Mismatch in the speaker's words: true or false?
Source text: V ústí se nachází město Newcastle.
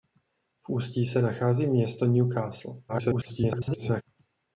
true